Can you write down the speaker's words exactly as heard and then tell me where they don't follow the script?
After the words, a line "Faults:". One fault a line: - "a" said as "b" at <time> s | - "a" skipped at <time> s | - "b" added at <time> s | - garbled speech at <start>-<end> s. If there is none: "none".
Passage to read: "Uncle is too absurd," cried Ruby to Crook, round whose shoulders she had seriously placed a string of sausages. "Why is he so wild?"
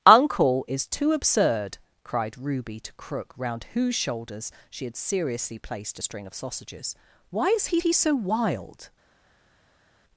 "Uncle is too absurd," cried Ruby to Crook, round whose shoulders she had seriously placed a string of sausages. "Why is he he so wild?"
Faults:
- "he" added at 7.8 s